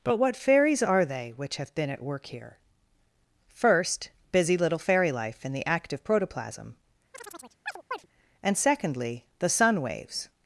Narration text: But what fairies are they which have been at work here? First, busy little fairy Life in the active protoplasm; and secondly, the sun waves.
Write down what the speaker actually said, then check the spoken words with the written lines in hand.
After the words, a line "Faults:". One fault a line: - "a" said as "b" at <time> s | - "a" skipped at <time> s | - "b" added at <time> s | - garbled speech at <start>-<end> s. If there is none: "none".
But what fairies are they which have been at work here? First, busy little fairy Life in the active protoplasm; and secondly, the sun waves.
Faults:
none